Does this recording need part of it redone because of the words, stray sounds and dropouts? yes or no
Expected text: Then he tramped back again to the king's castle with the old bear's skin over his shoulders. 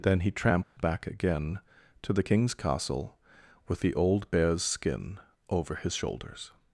yes